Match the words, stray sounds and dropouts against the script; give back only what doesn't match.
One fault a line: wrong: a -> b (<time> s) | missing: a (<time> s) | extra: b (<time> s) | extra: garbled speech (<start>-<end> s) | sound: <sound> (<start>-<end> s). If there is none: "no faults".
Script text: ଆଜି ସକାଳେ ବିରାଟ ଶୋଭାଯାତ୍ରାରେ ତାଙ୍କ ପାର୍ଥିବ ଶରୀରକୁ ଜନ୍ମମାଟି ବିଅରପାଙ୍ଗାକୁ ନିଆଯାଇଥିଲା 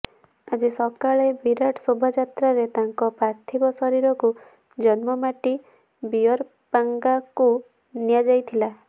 no faults